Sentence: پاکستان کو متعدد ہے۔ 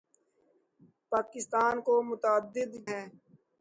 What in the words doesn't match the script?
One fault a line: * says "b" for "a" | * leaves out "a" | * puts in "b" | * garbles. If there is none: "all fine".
all fine